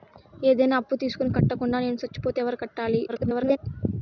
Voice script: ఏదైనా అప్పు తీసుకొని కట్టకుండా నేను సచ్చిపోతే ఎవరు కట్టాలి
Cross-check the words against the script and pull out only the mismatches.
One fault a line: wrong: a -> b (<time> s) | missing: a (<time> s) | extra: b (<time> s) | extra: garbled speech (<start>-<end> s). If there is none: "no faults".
extra: garbled speech (3.1-3.6 s)